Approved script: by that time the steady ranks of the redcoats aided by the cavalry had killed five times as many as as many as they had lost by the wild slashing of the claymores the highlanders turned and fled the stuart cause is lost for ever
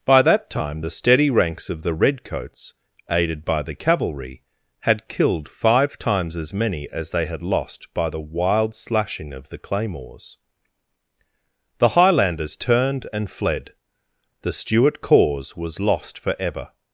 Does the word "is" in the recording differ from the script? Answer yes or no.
yes